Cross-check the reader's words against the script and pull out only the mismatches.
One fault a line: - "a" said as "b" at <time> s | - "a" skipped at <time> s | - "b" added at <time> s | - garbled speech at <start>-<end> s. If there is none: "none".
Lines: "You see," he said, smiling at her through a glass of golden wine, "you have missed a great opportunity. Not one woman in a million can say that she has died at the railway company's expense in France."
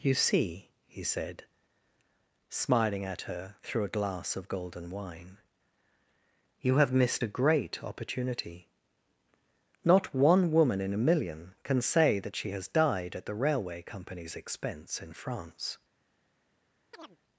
none